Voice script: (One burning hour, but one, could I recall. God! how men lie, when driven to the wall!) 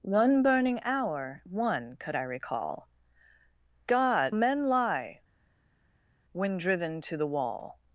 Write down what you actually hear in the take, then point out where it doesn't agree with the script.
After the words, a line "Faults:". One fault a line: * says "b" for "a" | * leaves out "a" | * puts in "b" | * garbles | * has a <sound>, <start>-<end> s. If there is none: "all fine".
(One burning hour, one, could I recall. God! men lie, when driven to the wall!)
Faults:
* leaves out "but"
* leaves out "how"